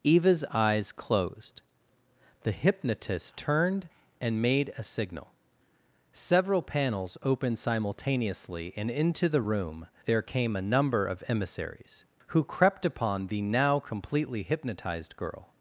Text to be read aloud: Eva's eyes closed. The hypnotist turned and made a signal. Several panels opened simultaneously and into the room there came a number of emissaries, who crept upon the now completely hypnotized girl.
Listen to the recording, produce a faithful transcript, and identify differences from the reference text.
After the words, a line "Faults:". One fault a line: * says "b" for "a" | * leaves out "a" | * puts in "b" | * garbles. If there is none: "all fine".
Eva's eyes closed. The hypnotist turned and made a signal. Several panels opened simultaneously and into the room there came a number of emissaries, who crept upon the now completely hypnotized girl.
Faults:
all fine